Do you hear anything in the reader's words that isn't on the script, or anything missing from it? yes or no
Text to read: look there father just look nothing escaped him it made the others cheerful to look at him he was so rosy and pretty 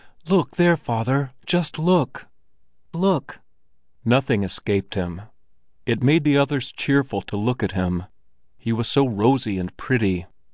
yes